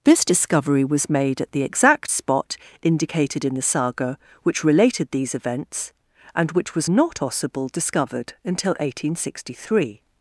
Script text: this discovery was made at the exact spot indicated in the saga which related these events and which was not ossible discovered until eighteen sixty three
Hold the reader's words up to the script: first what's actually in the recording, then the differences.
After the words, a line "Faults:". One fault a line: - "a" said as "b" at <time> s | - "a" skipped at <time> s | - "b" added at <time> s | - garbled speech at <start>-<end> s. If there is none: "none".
this discovery was made at the exact spot indicated in the saga which related these events and which was not ossible discovered until eighteen sixty three
Faults:
none